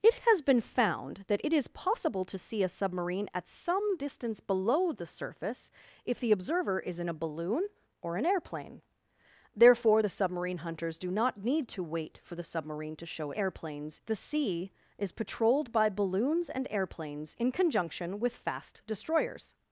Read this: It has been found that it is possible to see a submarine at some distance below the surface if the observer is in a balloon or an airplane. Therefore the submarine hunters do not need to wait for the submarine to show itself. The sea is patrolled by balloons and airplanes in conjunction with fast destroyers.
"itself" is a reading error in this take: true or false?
true